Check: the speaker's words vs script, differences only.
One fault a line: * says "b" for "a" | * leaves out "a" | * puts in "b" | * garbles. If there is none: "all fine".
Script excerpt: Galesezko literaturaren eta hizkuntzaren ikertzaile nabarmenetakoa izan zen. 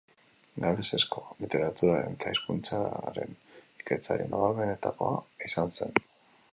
all fine